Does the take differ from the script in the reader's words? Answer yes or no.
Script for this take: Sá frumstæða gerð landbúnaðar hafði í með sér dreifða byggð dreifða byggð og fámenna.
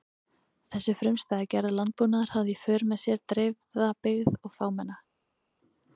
yes